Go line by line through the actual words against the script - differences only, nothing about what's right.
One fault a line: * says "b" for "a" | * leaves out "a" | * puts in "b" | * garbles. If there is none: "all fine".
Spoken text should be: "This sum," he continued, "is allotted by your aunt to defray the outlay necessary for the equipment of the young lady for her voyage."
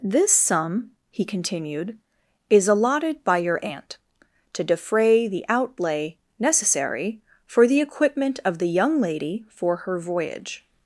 all fine